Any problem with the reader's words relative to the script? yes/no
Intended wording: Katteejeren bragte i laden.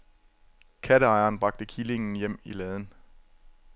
yes